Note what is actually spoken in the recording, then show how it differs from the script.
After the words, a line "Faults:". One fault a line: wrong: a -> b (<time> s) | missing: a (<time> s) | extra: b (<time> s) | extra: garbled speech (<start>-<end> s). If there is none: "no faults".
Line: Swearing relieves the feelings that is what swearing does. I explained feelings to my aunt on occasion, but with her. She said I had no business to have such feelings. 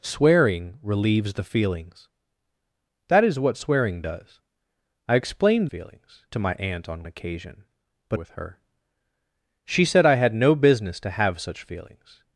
Swearing relieves the feelings that is what swearing does. I explained feelings to my aunt on occasion, but with her. She said I had no business to have such feelings.
Faults:
no faults